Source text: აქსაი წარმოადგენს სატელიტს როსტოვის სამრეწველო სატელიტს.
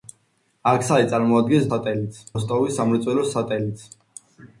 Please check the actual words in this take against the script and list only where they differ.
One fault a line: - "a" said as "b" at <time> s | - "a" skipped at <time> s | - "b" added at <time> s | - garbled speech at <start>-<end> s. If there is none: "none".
none